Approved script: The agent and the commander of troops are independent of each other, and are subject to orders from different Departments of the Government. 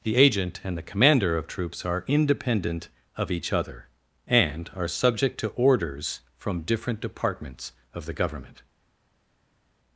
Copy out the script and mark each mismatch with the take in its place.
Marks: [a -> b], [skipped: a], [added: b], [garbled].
The agent and the commander of troops are independent of each other, and are subject to orders from different Departments of the Government.